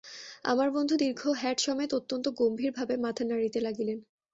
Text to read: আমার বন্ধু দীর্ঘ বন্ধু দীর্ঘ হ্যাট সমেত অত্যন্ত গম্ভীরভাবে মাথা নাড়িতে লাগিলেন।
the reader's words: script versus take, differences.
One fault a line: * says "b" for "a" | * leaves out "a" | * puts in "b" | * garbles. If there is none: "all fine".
* leaves out "বন্ধু দীর্ঘ"